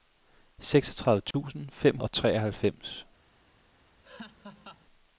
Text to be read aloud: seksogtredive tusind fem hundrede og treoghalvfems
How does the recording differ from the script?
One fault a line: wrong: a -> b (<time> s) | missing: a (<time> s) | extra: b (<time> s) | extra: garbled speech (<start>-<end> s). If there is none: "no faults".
missing: hundrede (2.0 s)